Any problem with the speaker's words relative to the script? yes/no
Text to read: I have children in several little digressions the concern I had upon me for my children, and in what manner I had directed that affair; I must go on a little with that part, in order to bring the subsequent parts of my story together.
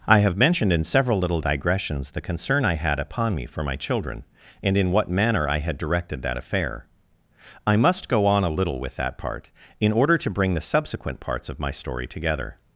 yes